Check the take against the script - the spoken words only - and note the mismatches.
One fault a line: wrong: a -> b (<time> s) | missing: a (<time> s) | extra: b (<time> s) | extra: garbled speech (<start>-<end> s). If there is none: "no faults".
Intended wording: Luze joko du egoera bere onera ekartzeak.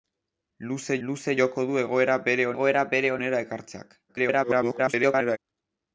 extra: luze (1.1 s)
extra: egoera bere (2.5 s)
extra: garbled speech (4.1-5.4 s)